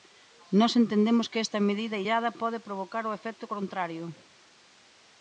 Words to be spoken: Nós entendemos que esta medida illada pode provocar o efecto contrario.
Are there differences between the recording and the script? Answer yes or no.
no